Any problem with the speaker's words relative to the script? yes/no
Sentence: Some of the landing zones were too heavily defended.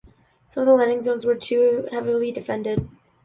no